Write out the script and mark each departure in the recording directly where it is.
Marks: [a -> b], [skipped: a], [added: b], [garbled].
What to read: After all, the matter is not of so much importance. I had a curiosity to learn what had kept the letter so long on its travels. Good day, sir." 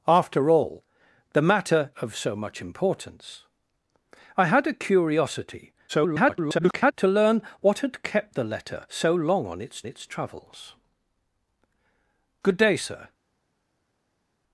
After all, the matter [skipped: is not] of so much importance. I had a curiosity [garbled] to learn what had kept the letter so long on its [added: its] travels. Good day, sir."